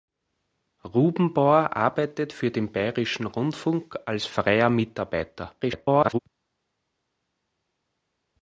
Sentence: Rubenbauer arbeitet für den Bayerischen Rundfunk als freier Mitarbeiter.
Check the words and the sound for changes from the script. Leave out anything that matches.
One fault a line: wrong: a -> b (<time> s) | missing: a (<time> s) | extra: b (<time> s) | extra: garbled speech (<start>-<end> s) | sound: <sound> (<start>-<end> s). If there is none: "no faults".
extra: garbled speech (5.6-6.2 s)